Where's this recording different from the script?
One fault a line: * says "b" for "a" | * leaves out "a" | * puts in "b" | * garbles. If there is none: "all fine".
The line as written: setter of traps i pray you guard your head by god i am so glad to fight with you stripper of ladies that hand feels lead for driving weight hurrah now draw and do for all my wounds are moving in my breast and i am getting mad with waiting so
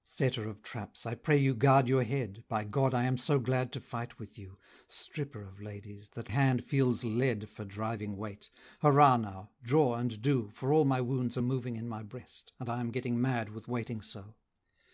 all fine